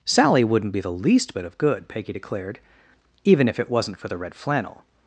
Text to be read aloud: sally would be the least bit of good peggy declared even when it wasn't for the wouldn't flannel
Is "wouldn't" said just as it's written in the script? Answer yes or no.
no